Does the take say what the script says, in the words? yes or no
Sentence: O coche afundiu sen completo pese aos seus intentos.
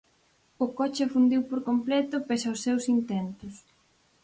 no